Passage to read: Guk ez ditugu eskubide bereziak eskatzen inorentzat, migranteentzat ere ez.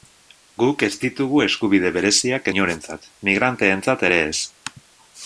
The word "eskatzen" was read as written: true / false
false